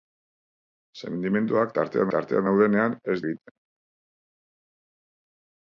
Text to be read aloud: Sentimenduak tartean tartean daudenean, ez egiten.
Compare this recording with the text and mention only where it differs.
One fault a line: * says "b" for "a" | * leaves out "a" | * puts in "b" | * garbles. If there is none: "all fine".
all fine